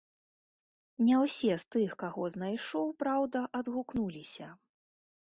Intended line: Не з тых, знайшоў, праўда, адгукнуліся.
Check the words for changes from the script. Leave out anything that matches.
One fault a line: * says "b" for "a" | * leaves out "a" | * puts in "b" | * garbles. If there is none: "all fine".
* puts in "ўсе"
* puts in "каго"